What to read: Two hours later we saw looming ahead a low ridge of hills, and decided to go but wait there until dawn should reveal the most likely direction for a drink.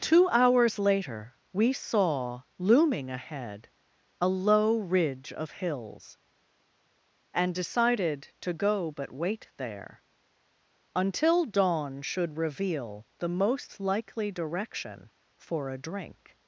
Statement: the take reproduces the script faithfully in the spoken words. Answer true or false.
true